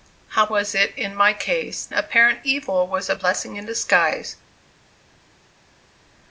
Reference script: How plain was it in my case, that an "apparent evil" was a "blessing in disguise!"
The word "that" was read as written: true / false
false